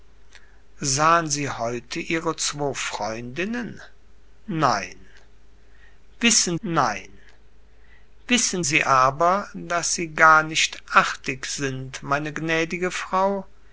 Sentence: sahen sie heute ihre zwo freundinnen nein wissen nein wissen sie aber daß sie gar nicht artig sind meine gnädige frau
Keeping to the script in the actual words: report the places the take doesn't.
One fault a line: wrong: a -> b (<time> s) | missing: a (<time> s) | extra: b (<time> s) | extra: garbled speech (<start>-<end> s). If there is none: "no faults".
no faults